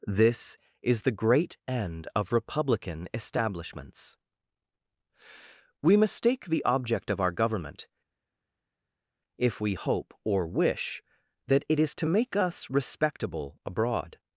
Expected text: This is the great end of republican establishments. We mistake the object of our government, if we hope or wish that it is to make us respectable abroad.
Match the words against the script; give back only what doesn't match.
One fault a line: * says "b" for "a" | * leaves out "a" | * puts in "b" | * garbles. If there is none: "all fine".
all fine